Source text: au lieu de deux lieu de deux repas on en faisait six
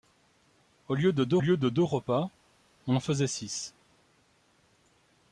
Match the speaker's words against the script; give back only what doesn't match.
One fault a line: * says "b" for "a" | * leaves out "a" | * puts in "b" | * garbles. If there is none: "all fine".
all fine